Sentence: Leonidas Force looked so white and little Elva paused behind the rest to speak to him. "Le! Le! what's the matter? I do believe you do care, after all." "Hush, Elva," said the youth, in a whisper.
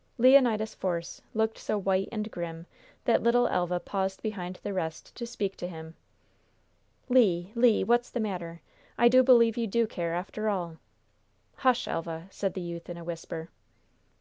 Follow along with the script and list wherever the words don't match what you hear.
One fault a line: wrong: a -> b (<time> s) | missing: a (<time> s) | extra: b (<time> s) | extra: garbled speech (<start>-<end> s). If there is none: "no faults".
extra: grim that (2.3 s)